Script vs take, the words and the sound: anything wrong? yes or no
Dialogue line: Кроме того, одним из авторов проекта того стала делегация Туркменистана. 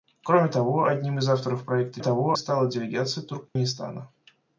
yes